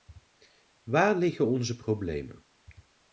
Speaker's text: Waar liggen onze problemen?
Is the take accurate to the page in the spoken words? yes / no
yes